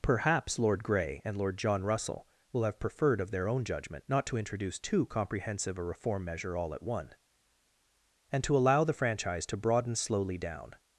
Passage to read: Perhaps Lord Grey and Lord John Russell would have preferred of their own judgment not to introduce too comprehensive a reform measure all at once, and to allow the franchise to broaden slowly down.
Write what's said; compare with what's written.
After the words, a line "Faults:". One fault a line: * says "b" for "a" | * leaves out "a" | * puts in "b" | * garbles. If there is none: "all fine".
Perhaps Lord Grey and Lord John Russell will have preferred of their own judgment not to introduce too comprehensive a reform measure all at one, and to allow the franchise to broaden slowly down.
Faults:
* says "will" for "would"
* says "one" for "once"